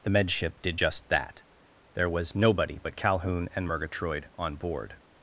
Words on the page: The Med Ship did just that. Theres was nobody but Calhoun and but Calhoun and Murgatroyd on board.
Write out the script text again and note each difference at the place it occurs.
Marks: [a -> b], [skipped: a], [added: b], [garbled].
The Med Ship did just that. [Theres -> There] was nobody but Calhoun and [skipped: but Calhoun and] Murgatroyd on board.